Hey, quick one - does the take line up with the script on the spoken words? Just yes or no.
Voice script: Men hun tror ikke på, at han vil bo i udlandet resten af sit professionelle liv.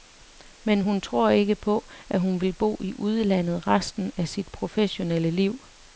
no